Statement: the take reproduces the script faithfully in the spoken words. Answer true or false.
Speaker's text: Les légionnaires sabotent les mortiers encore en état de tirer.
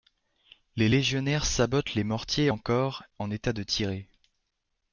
true